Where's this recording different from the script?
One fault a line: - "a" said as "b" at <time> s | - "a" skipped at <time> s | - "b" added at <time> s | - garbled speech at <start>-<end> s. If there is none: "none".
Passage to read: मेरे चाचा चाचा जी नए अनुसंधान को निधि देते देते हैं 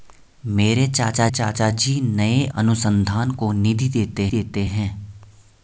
none